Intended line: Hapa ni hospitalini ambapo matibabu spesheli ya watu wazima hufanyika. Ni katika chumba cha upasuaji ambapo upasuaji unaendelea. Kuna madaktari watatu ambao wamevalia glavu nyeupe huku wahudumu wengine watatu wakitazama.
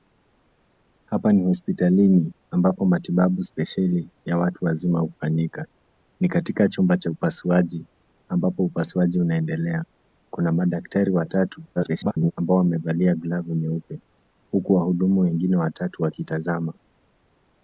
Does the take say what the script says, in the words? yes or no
no